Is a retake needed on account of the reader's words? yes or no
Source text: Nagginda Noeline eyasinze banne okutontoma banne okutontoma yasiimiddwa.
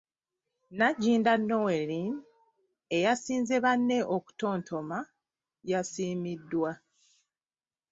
yes